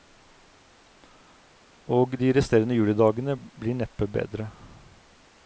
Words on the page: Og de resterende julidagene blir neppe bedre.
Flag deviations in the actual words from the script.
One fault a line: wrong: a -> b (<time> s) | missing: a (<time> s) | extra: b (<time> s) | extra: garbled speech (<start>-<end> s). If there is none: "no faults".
no faults